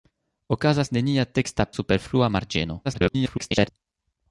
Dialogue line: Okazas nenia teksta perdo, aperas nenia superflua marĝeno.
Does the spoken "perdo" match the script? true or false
false